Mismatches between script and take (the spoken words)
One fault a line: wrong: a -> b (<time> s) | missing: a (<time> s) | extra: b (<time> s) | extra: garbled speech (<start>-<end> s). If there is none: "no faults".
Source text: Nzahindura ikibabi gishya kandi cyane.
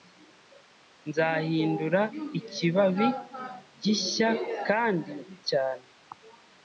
no faults